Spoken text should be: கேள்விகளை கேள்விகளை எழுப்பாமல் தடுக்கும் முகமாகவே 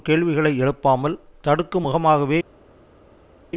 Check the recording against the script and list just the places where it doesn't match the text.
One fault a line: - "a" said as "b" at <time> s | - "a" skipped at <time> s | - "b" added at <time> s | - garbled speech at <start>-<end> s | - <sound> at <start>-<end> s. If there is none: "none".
- "கேள்விகளை" skipped at 0.5 s